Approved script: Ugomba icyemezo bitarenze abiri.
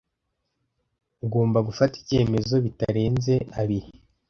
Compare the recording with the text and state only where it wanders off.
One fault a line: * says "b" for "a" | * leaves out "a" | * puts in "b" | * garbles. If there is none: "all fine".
* puts in "gufata"